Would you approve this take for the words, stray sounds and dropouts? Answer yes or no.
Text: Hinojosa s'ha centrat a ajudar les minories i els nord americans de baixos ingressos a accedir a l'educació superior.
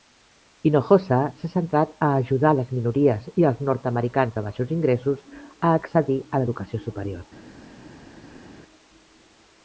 yes